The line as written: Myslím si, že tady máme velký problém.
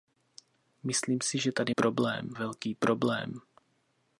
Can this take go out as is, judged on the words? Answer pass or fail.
fail